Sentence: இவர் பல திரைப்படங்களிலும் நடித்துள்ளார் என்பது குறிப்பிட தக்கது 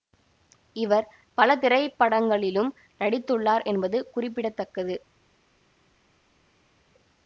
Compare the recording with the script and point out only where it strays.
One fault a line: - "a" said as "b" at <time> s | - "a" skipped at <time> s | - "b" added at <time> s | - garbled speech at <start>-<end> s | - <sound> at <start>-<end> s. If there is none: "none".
none